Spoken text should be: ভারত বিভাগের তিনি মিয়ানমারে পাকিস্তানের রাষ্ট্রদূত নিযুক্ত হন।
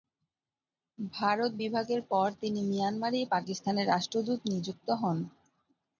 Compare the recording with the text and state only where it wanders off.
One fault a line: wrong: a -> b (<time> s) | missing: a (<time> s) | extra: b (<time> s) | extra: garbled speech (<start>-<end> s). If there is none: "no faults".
extra: পর (2.1 s)